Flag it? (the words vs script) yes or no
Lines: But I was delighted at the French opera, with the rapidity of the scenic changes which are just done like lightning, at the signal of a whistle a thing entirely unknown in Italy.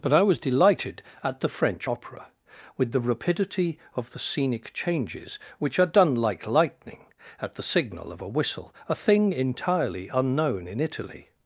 yes